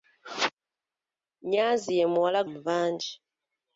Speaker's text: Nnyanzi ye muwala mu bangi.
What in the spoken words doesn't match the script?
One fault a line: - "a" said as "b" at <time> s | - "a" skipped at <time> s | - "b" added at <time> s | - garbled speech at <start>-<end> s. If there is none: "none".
none